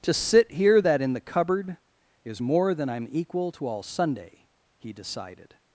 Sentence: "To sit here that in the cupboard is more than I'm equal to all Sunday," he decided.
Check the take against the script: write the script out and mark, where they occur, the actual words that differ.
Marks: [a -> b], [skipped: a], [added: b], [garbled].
"To sit here that in the cupboard is more than I'm equal to all Sunday," he decided.